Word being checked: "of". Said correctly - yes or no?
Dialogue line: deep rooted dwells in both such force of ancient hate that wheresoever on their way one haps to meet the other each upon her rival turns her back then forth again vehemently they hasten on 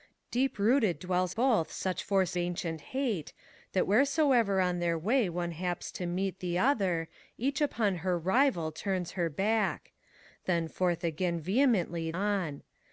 no